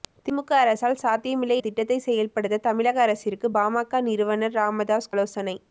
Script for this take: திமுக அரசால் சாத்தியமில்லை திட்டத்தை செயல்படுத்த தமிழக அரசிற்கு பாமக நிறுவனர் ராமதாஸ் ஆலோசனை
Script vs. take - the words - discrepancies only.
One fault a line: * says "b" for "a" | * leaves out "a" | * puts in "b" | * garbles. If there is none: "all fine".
all fine